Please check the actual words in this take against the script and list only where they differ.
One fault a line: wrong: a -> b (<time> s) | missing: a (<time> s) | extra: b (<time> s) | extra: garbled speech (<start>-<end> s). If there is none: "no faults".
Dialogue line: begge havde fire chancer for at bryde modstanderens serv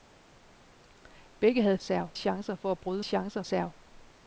wrong: fire -> serv (1.8 s)
wrong: modstanderens -> chancer (3.0 s)